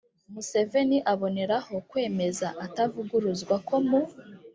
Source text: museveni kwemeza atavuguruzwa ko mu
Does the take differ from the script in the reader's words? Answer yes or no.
yes